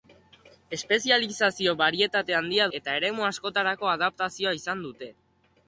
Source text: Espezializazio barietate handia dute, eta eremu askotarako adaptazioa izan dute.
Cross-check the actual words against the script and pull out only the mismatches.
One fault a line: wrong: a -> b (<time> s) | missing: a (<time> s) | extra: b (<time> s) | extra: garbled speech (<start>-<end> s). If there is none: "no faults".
missing: dute (2.6 s)